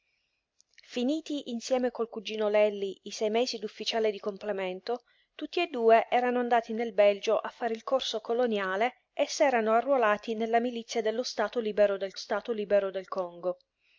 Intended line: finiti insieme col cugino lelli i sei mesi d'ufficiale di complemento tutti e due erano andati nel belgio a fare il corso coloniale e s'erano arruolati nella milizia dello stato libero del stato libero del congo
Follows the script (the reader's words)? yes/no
yes